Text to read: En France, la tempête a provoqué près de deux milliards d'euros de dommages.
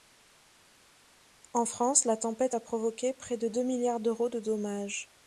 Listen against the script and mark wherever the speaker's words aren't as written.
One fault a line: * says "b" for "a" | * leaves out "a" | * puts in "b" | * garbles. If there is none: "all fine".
all fine